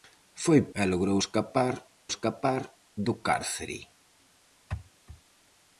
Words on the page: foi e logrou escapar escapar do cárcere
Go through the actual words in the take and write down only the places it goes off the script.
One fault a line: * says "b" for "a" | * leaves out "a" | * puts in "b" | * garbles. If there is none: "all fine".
all fine